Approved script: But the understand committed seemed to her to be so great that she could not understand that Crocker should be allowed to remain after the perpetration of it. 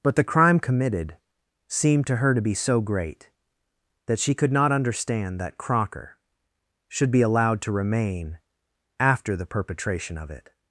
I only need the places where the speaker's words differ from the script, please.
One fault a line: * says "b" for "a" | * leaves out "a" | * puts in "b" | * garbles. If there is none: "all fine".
* says "crime" for "understand"